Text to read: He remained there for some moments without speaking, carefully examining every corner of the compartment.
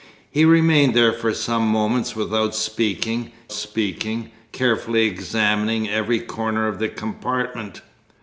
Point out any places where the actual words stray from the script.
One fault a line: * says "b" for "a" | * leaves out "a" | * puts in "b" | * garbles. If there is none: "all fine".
* puts in "speaking"